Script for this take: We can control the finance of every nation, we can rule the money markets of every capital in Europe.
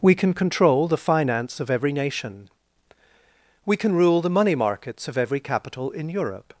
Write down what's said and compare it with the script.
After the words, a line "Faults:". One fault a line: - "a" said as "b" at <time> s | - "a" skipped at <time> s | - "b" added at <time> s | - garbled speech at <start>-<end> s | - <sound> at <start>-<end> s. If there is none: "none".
We can control the finance of every nation, we can rule the money markets of every capital in Europe.
Faults:
none